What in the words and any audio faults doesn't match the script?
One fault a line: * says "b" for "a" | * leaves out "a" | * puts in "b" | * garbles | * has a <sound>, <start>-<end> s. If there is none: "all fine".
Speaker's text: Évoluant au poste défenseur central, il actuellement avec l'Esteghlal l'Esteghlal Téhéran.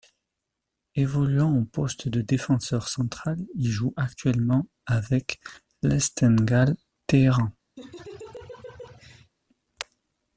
* puts in "de"
* puts in "joue"
* leaves out "l'Esteghlal"
* has a laugh, 7.8-9.3 s